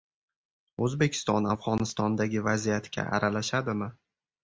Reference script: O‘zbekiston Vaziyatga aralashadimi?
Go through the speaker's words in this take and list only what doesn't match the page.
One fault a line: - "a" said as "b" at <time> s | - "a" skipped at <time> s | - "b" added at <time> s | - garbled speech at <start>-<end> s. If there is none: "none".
- "Afg‘onistondagi" added at 1.5 s